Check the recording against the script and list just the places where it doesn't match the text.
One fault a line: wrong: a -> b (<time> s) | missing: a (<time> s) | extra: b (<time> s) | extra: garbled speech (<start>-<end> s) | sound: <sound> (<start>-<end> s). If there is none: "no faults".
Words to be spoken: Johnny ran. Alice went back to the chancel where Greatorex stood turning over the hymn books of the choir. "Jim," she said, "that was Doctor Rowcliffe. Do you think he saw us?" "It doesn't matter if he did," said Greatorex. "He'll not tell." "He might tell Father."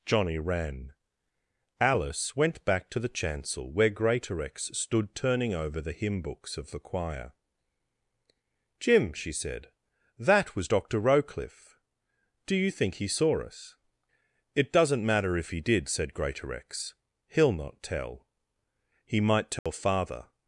sound: dropout (19.6-19.7 s)